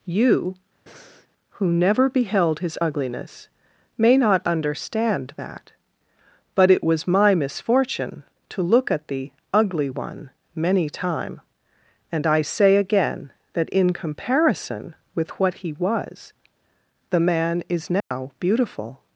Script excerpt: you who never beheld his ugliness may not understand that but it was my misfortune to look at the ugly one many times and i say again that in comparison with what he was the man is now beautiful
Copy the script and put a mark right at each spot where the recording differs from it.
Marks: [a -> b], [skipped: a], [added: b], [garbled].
you who never beheld his ugliness may not understand that but it was my misfortune to look at the ugly one many [times -> time] and i say again that in comparison with what he was the man is now beautiful